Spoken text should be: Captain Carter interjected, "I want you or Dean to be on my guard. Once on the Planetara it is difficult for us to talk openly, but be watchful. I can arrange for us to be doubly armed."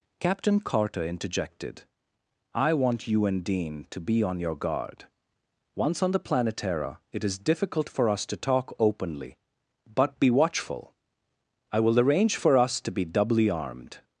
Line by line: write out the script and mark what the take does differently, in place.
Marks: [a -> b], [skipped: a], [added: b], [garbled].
Captain Carter interjected, "I want you [or -> and] Dean to be on [my -> your] guard. Once on the Planetara it is difficult for us to talk openly, but be watchful. I [can -> will] arrange for us to be doubly armed."